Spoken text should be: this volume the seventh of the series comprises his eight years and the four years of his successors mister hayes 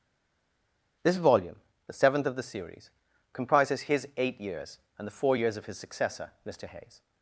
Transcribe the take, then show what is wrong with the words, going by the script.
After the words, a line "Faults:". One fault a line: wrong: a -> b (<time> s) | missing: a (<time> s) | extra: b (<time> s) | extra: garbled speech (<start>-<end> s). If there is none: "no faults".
this volume the seventh of the series comprises his eight years and the four years of his successor mister hayes
Faults:
wrong: successors -> successor (5.8 s)